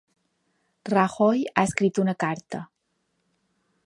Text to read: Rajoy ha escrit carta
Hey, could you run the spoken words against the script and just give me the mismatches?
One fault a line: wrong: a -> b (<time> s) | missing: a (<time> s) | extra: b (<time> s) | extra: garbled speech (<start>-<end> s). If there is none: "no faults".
extra: una (2.0 s)